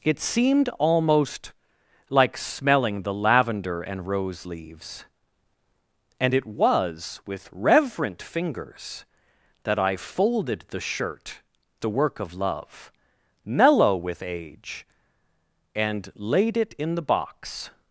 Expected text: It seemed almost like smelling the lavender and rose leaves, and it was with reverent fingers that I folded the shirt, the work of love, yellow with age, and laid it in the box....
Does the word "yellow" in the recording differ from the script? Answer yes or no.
yes